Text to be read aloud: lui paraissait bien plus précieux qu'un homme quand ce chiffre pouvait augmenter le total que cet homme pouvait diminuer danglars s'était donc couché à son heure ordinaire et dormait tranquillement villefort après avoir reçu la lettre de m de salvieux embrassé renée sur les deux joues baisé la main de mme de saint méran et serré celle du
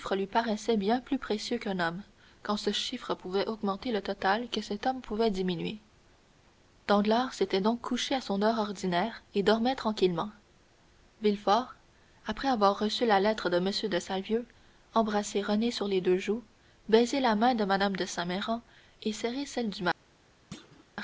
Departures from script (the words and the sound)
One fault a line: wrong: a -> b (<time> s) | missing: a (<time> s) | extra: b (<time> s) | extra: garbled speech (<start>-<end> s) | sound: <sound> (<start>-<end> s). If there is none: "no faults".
sound: thud (20.5-20.9 s)